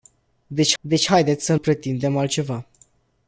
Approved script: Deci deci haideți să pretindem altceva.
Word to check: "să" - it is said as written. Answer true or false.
true